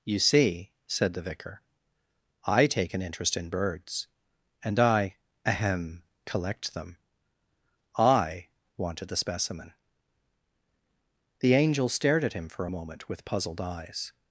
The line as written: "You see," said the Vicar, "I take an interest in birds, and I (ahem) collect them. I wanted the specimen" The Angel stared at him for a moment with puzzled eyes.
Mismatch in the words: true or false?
false